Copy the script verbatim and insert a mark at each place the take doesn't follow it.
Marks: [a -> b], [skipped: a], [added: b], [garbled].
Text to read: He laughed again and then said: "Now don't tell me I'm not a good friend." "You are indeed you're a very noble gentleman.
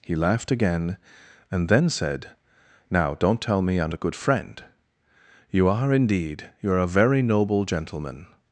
He laughed again and then said: "Now don't tell me I'm [skipped: not] a good friend." "You are indeed you're a very noble gentleman.